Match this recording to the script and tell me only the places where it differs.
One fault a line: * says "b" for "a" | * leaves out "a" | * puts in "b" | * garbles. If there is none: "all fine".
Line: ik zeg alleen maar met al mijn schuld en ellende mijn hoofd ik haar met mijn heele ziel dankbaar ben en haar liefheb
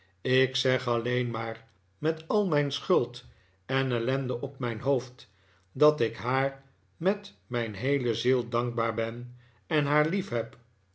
* puts in "op"
* puts in "dat"